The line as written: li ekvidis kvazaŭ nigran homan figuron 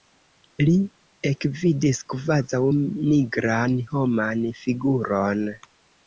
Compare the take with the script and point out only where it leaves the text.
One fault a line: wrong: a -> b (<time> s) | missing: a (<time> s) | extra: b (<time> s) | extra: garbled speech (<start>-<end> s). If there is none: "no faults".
no faults